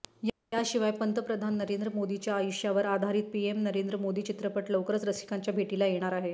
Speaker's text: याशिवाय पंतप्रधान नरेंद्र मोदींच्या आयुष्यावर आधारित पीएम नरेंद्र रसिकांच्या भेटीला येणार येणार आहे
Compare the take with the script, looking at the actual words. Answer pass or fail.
fail